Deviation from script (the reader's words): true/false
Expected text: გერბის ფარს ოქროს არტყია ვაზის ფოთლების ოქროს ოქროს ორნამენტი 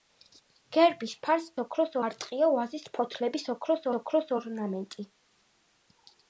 false